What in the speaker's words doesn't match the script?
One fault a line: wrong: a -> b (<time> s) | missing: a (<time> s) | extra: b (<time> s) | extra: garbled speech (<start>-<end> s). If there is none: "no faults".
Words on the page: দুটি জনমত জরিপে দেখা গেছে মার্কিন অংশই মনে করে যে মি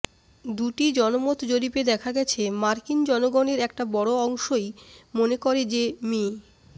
extra: জনগণের একটা বড় (3.0 s)